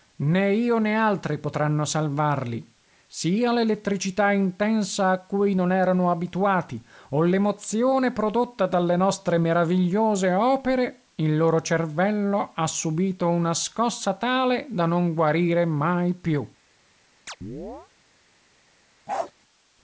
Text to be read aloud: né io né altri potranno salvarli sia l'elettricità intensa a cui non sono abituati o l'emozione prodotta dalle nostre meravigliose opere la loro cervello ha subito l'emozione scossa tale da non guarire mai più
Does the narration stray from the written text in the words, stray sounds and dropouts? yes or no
yes